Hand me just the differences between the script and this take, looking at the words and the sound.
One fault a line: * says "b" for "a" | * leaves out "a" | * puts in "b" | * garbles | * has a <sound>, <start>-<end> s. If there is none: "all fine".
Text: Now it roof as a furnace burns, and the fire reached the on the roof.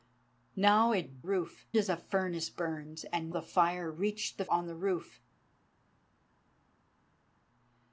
all fine